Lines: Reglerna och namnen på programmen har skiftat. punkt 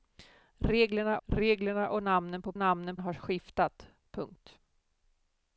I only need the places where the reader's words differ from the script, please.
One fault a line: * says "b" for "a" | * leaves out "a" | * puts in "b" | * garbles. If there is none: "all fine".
* puts in "reglerna"
* says "namnen" for "programmen"